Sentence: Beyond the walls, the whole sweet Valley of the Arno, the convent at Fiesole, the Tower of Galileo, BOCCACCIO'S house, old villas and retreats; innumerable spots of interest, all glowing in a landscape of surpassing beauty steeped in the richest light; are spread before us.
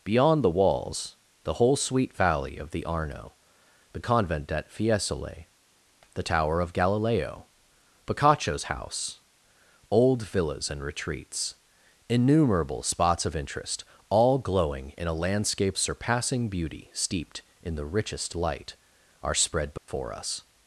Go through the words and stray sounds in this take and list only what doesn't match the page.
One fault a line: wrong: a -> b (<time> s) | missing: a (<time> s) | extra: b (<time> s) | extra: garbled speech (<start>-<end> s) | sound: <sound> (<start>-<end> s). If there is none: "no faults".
missing: of (15.8 s)
sound: dropout (19.8-19.9 s)